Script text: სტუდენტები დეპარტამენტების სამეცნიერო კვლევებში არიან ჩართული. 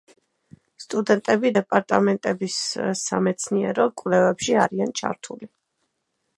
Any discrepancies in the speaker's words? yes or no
no